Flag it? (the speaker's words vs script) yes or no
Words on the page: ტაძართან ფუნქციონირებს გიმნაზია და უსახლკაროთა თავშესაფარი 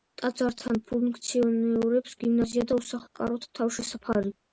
no